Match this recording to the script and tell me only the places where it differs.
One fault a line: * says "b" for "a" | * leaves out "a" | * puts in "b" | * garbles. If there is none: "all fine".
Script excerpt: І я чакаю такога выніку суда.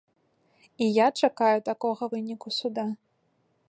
all fine